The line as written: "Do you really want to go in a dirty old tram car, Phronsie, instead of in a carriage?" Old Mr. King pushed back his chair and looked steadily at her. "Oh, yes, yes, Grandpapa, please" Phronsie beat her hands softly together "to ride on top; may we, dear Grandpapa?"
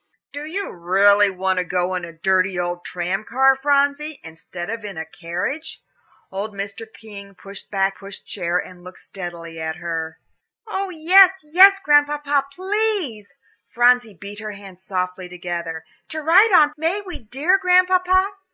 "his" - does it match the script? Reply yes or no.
no